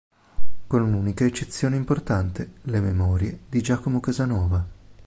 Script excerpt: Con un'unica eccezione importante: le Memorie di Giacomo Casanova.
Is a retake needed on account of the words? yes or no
no